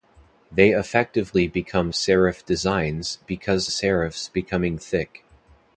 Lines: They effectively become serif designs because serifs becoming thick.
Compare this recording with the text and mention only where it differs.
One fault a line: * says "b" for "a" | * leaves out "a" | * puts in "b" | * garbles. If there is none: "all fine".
all fine